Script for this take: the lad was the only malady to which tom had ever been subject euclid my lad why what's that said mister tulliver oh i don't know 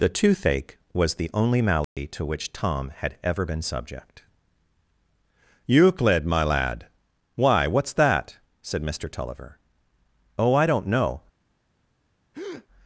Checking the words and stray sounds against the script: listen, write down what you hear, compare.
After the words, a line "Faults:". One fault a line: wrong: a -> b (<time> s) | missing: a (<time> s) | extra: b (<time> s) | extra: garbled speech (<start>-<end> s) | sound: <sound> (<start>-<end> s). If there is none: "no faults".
the toothache was the only malady to which tom had ever been subject euclid my lad why what's that said mister tulliver oh i don't know
Faults:
wrong: lad -> toothache (0.1 s)
sound: dropout (1.8-2.0 s)
sound: breath (12.3-12.7 s)